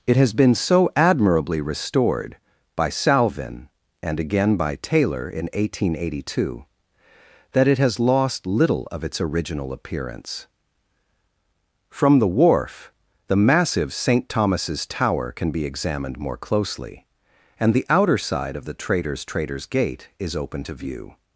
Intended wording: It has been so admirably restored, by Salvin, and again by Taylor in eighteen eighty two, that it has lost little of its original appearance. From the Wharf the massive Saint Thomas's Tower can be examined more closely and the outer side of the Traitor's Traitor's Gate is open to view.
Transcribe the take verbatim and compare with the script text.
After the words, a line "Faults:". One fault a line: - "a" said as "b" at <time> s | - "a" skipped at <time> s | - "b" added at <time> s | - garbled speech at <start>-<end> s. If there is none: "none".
It has been so admirably restored, by Salvin, and again by Taylor in eighteen eighty two, that it has lost little of its original appearance. From the Wharf the massive Saint Thomas's Tower can be examined more closely and the outer side of the Traitor's Traitor's Gate is open to view.
Faults:
none